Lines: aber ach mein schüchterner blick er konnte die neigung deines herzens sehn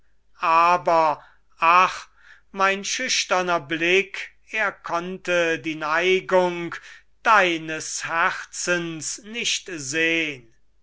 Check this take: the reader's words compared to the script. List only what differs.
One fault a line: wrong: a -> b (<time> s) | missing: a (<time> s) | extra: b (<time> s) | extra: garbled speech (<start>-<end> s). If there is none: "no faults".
extra: nicht (9.2 s)